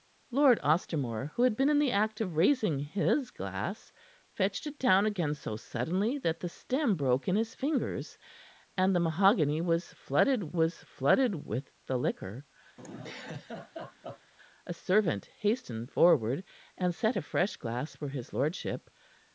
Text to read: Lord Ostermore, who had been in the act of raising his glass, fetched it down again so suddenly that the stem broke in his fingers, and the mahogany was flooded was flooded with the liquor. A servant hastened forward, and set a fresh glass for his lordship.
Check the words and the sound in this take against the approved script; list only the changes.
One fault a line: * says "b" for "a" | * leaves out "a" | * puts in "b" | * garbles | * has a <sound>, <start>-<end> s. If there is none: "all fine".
* has a laugh, 12.8-14.3 s